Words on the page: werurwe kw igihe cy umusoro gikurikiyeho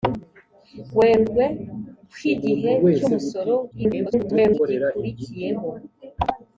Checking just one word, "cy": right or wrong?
right